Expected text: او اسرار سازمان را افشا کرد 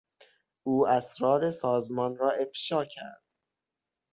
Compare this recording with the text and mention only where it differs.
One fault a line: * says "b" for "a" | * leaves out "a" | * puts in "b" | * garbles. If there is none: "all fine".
all fine